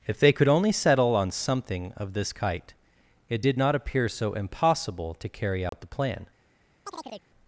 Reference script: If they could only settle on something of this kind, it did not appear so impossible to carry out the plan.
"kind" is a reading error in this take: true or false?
true